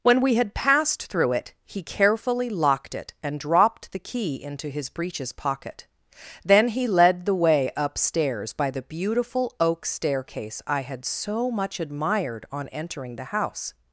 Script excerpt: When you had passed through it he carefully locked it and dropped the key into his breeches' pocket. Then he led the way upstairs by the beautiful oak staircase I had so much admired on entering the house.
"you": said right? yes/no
no